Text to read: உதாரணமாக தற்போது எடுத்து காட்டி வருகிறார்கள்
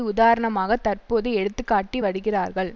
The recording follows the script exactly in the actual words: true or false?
true